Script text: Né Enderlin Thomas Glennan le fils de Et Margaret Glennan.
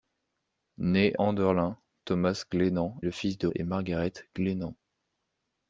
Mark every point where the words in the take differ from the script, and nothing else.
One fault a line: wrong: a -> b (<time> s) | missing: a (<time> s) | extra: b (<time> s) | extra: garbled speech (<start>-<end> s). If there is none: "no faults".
no faults